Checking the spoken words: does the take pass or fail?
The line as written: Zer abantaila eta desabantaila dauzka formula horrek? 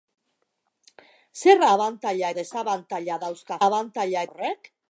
fail